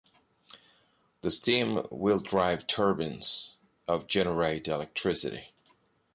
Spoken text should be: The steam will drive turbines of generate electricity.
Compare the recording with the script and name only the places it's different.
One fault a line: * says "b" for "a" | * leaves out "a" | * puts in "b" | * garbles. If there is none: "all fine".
all fine